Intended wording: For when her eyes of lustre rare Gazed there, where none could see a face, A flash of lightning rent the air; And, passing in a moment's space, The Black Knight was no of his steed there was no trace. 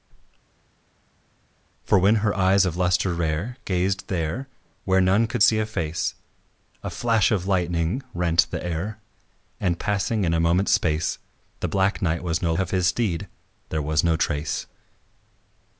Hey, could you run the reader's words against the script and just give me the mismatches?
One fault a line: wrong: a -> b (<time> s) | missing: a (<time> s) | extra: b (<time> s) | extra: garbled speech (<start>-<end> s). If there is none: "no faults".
no faults